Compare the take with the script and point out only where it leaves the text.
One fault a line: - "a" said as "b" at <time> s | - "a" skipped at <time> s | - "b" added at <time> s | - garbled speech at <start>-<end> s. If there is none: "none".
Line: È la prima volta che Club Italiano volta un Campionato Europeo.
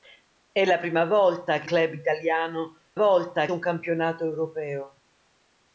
none